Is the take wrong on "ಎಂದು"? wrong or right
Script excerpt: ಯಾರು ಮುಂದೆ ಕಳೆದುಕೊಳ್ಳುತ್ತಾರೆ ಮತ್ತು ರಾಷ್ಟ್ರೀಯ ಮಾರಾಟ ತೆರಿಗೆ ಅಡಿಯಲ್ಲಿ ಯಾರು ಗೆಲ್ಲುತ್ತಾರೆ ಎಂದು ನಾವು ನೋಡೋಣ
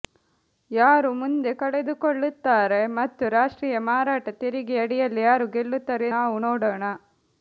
wrong